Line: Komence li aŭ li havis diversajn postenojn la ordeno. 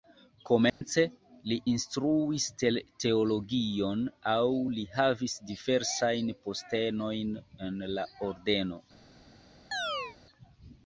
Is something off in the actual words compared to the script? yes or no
yes